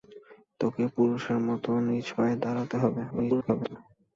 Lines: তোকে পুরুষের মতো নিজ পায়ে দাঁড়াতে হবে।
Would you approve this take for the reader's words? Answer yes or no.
no